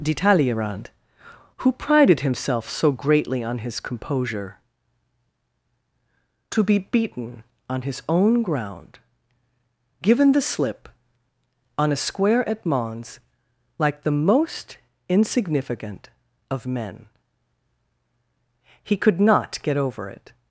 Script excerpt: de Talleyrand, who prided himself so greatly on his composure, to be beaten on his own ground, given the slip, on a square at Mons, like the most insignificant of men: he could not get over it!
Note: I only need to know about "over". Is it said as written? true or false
true